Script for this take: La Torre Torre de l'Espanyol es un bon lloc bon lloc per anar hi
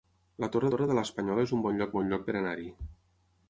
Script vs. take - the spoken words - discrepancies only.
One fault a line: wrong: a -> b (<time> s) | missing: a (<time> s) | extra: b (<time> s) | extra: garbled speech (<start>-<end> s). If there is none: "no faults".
no faults